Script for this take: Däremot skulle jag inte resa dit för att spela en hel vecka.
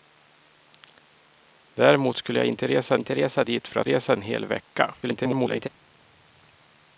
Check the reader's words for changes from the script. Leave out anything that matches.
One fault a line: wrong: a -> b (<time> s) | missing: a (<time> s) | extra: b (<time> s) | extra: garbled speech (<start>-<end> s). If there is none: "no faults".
extra: inte resa (3.0 s)
wrong: spela -> resa (3.9 s)
extra: garbled speech (5.0-5.7 s)